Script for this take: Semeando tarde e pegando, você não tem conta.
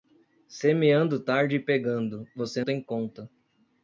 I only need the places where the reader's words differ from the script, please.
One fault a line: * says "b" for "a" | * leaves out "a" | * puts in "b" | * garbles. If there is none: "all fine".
* leaves out "não"